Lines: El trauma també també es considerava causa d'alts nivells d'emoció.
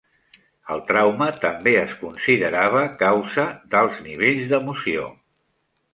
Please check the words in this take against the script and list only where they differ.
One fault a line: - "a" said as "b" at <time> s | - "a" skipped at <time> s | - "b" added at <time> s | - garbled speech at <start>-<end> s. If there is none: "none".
- "també" skipped at 1.7 s